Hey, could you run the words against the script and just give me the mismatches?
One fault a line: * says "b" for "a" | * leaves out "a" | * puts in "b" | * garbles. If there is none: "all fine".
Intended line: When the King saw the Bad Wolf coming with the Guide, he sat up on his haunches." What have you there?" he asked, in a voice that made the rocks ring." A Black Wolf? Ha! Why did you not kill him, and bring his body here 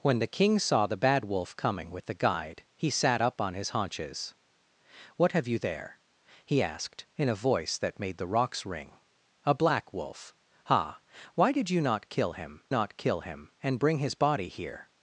* puts in "not kill him"